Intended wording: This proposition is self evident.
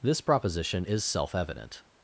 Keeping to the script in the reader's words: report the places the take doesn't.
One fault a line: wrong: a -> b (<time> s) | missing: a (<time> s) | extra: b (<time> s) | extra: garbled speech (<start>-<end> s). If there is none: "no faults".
no faults